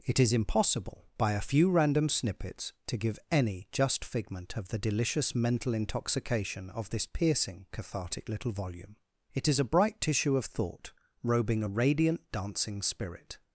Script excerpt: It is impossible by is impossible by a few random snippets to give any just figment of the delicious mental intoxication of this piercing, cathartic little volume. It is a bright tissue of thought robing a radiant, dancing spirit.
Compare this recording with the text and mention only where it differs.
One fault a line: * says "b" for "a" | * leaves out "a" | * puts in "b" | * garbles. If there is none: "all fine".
* leaves out "is impossible by"